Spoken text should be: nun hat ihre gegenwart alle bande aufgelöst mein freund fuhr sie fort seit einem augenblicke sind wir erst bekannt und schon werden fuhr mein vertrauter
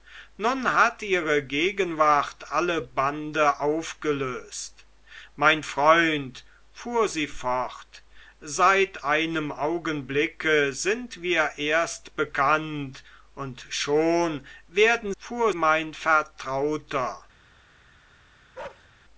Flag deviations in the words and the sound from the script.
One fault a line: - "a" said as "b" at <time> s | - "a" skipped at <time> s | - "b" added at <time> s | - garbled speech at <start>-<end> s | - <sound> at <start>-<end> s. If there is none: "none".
- bark at 18.5-18.9 s